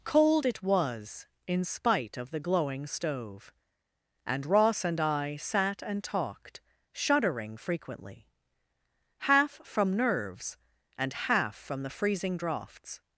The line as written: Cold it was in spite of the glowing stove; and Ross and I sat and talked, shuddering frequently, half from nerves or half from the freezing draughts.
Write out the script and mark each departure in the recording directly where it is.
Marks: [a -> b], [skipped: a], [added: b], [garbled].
Cold it was in spite of the glowing stove; and Ross and I sat and talked, shuddering frequently, half from nerves [or -> and] half from the freezing draughts.